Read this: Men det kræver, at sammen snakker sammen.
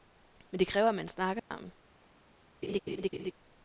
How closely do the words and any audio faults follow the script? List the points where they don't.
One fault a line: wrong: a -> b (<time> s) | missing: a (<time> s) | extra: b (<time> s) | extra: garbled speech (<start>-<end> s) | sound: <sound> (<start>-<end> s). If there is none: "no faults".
wrong: sammen -> man (0.9 s)
sound: dropout (1.4-1.5 s)
sound: laugh (2.6-3.3 s)